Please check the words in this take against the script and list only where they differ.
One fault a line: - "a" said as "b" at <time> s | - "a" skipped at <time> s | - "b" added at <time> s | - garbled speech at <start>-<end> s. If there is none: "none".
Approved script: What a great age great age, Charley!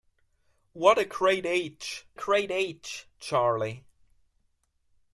none